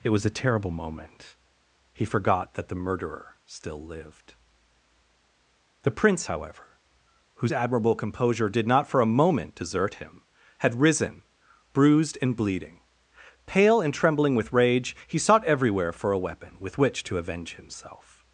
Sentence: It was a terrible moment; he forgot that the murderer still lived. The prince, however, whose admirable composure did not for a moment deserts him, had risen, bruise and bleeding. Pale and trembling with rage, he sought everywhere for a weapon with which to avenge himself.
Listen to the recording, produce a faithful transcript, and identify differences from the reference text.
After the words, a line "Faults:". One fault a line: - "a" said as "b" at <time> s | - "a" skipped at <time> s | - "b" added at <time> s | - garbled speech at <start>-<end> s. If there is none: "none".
It was a terrible moment; he forgot that the murderer still lived. The prince, however, whose admirable composure did not for a moment desert him, had risen, bruised and bleeding. Pale and trembling with rage, he sought everywhere for a weapon with which to avenge himself.
Faults:
- "deserts" said as "desert" at 9.5 s
- "bruise" said as "bruised" at 11.7 s